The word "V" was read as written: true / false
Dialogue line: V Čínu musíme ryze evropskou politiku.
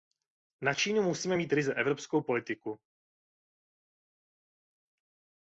false